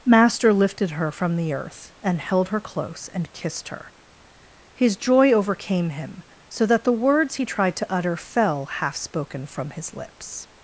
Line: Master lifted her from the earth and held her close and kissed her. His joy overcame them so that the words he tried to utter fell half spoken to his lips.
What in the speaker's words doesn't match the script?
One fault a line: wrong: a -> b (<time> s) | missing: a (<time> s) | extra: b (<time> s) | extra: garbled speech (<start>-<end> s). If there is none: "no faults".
wrong: them -> him (5.9 s)
wrong: to -> from (9.5 s)